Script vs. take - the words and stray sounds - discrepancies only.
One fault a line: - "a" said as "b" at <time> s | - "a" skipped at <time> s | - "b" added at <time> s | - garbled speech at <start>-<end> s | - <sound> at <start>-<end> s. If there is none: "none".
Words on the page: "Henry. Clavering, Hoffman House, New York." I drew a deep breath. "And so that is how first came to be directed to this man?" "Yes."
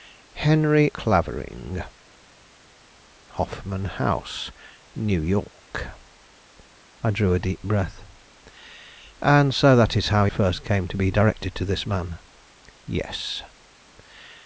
none